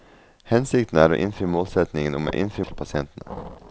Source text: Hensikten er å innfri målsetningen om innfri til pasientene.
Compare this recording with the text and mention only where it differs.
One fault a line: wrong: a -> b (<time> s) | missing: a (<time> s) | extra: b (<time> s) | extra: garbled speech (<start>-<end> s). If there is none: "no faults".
no faults